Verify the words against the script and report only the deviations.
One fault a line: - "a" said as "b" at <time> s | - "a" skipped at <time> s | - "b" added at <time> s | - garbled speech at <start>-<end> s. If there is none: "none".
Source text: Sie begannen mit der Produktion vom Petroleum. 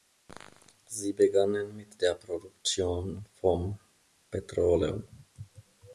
none